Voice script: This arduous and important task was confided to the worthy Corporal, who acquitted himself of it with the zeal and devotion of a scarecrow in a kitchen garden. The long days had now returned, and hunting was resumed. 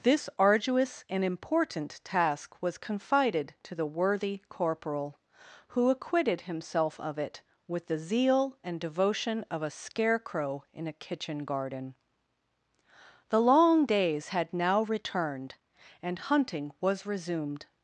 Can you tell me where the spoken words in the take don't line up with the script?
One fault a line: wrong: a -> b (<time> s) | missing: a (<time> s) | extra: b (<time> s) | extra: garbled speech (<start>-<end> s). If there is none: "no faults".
no faults